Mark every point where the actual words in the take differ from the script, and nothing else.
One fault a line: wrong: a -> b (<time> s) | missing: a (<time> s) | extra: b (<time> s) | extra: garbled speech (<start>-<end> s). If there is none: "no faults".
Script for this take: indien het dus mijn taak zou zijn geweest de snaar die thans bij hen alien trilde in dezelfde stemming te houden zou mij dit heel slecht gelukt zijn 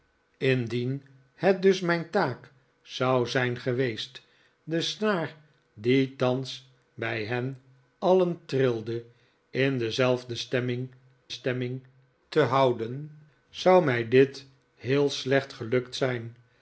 extra: stemming (11.3 s)